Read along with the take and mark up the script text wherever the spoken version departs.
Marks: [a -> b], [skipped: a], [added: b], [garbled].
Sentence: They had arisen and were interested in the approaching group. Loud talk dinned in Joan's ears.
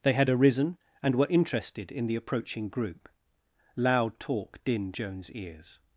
They had arisen and were interested in the approaching group. Loud talk dinned [skipped: in] Joan's ears.